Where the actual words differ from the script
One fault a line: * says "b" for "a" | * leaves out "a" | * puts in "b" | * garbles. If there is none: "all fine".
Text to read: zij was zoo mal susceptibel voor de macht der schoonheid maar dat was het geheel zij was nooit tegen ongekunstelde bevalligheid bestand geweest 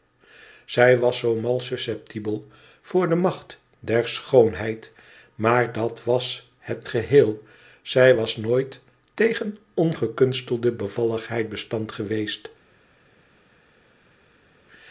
all fine